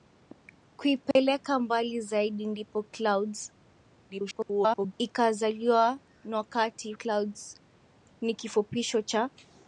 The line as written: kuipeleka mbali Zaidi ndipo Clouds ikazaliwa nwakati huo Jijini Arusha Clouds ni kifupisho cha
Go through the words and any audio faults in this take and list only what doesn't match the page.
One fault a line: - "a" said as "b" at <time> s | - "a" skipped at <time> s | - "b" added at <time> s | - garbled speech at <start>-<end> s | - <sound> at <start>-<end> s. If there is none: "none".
- dropout at 1.1-1.2 s
- garbled speech at 4.1-4.9 s
- "huo Jijini Arusha" skipped at 6.9 s